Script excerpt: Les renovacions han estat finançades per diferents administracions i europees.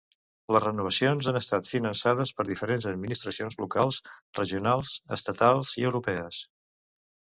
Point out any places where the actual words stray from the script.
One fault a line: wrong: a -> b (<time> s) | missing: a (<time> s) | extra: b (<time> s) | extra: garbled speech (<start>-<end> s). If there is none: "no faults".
extra: locals regionals estatals (3.7 s)